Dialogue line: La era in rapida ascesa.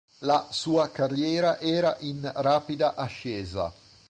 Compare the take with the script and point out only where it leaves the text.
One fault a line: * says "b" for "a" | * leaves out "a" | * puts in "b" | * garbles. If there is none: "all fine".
* puts in "sua carriera"